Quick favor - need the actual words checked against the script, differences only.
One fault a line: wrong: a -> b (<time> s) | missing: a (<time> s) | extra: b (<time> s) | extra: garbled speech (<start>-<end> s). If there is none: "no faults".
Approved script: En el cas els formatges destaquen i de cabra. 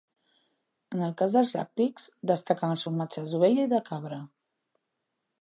extra: dels làctics destaquen (1.4 s)
wrong: destaquen -> d'ovella (3.3 s)